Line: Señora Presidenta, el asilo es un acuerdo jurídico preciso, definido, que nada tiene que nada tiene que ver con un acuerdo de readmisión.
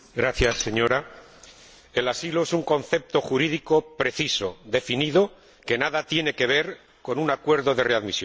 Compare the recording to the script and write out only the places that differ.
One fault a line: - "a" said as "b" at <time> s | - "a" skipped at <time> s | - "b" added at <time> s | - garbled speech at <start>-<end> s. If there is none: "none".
- "acuerdo" said as "concepto" at 2.6 s
- "nada tiene que" skipped at 6.4 s